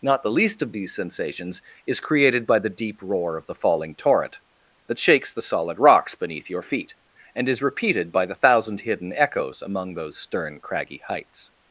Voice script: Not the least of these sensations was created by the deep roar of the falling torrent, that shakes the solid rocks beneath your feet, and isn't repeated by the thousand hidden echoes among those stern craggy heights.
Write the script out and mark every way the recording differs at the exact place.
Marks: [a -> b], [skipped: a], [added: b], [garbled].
Not the least of these sensations [was -> is] created by the deep roar of the falling torrent, that shakes the solid rocks beneath your feet, and [isn't -> is] repeated by the thousand hidden echoes among those stern craggy heights.